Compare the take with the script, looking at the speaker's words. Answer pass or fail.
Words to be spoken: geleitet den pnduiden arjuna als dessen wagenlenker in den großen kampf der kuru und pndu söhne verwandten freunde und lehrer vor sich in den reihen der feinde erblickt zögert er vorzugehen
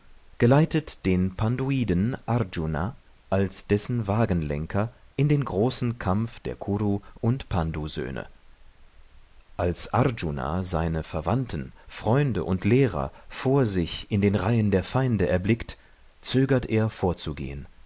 fail